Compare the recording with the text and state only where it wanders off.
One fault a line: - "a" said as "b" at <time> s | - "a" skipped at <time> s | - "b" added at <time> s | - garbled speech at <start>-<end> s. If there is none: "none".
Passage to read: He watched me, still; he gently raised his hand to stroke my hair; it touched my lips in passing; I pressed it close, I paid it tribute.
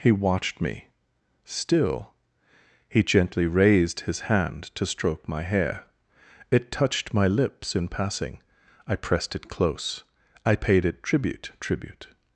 - "tribute" added at 11.6 s